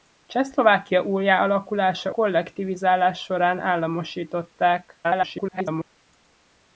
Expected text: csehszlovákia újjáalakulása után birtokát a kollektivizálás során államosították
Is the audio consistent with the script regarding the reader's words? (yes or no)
no